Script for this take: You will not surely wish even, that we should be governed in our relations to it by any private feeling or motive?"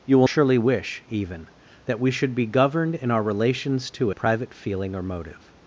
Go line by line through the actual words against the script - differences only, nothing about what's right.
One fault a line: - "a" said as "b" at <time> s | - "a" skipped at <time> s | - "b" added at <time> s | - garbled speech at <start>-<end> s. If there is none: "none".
- "not" skipped at 0.3 s
- "it by any" skipped at 4.1 s